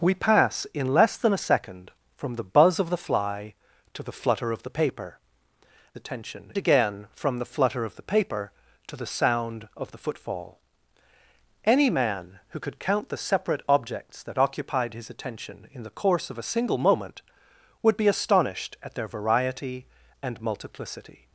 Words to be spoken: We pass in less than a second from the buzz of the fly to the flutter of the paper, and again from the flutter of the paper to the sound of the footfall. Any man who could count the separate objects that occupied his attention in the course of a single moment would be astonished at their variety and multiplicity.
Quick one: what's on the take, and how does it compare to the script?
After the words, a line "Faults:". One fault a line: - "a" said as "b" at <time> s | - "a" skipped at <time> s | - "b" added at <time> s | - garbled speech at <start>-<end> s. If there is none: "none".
We pass in less than a second from the buzz of the fly to the flutter of the paper, attention again from the flutter of the paper to the sound of the footfall. Any man who could count the separate objects that occupied his attention in the course of a single moment would be astonished at their variety and multiplicity.
Faults:
- "and" said as "attention" at 6.0 s